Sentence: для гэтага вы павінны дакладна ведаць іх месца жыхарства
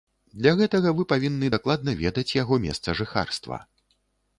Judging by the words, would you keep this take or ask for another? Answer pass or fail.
fail